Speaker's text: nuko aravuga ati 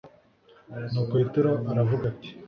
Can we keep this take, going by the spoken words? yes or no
no